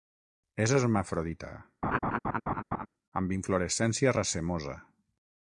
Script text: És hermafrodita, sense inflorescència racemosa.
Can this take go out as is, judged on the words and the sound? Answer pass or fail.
fail